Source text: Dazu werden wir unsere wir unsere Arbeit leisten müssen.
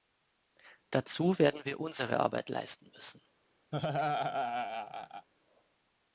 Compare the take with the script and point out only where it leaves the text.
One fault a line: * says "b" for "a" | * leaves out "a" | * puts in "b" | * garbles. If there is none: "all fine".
* leaves out "wir unsere"